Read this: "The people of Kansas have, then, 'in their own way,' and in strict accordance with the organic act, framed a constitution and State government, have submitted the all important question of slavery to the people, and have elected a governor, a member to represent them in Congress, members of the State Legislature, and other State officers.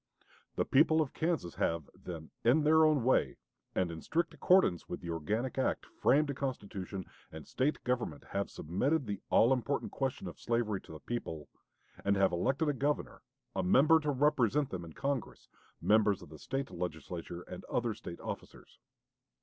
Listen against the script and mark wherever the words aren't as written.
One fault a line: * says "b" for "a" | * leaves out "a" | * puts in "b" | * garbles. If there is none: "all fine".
all fine